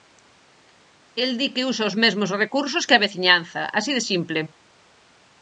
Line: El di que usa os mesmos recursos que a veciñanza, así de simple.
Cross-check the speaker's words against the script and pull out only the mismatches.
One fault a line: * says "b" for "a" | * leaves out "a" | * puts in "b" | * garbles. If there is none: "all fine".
all fine